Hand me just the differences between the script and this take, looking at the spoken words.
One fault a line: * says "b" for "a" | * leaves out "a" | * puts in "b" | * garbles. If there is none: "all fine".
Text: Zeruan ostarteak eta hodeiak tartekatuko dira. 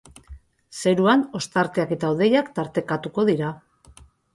all fine